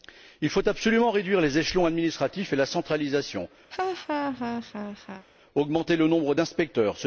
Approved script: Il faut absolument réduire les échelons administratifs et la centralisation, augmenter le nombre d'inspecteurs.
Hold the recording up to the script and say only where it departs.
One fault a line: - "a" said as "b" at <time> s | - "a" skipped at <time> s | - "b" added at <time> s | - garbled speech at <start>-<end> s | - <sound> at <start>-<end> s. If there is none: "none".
- laugh at 3.7-5.3 s